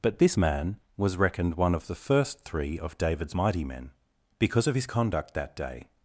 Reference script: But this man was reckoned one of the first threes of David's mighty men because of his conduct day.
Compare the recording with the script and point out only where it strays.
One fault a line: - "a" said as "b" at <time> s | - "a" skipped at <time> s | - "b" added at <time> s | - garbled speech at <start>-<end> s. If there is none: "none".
- "threes" said as "three" at 2.4 s
- "that" added at 5.3 s